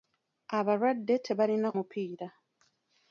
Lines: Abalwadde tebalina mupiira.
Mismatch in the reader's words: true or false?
false